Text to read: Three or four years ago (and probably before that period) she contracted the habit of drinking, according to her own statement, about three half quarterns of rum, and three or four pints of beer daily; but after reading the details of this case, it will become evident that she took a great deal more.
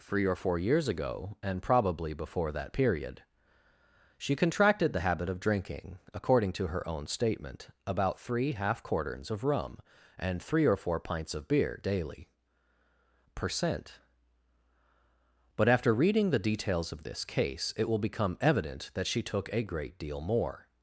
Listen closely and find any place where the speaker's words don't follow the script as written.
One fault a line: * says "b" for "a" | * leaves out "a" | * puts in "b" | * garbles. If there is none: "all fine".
* puts in "percent"